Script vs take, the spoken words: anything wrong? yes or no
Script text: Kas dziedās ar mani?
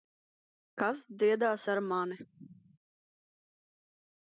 no